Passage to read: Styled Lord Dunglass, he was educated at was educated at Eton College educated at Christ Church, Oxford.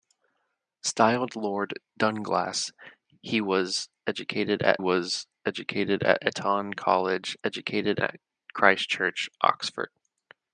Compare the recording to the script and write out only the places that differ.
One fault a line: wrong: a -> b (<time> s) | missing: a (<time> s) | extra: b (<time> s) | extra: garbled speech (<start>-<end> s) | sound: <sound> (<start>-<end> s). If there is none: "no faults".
no faults